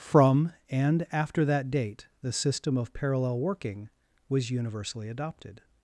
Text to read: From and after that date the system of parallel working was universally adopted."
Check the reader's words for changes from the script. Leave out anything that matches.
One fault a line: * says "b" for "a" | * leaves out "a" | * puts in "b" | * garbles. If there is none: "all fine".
all fine